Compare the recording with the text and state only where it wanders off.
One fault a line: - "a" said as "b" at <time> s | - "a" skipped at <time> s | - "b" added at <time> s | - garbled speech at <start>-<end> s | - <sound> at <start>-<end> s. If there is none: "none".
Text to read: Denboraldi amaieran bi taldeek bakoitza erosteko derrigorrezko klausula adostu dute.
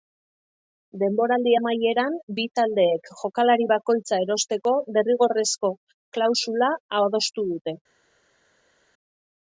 - "jokalari" added at 3.2 s